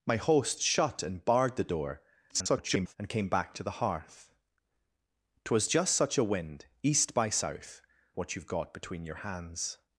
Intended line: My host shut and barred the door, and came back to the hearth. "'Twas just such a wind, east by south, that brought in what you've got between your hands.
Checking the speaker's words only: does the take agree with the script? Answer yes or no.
no